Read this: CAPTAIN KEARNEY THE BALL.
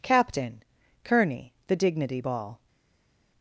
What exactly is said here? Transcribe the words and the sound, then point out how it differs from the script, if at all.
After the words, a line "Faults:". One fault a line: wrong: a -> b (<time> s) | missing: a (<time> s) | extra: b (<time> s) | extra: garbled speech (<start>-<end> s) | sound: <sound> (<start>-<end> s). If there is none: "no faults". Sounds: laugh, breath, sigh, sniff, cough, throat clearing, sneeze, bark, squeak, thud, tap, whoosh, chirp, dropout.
CAPTAIN KEARNEY THE DIGNITY BALL.
Faults:
extra: DIGNITY (1.8 s)